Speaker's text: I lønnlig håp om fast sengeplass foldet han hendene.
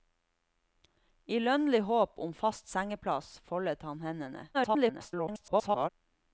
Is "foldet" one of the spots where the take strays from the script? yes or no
no